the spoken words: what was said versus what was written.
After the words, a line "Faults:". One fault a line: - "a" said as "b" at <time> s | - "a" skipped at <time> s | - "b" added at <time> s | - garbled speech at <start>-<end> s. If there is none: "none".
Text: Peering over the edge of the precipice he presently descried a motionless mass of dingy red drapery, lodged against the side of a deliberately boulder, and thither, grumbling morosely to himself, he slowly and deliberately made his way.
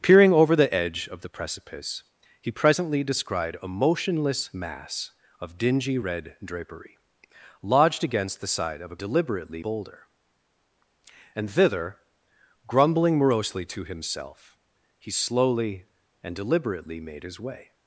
Peering over the edge of the precipice he presently descried a motionless mass of dingy red drapery, lodged against the side of a deliberately boulder, and thither, grumbling morosely to himself, he slowly and deliberately made his way.
Faults:
none